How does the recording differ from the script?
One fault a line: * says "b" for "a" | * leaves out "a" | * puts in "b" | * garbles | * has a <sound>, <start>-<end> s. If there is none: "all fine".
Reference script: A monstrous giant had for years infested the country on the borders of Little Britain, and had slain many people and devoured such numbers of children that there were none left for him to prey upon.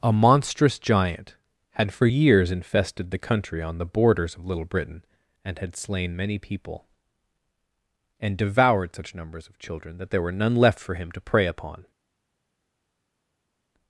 all fine